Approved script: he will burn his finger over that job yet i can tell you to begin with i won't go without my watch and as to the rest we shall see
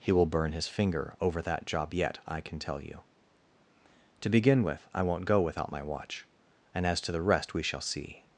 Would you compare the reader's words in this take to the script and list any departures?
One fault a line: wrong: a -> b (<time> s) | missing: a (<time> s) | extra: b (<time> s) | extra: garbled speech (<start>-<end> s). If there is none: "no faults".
no faults